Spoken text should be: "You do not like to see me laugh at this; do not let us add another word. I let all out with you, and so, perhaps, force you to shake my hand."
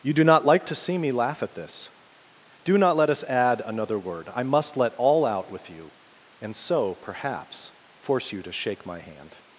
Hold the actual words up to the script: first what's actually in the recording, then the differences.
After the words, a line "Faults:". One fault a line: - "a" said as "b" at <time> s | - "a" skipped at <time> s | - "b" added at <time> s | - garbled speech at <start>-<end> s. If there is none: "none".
"You do not like to see me laugh at this; do not let us add another word. I must let all out with you, and so, perhaps, force you to shake my hand."
Faults:
- "must" added at 4.4 s